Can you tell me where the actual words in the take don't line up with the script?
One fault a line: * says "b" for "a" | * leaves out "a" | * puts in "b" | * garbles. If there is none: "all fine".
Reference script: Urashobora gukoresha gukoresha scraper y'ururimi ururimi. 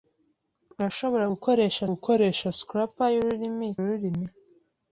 all fine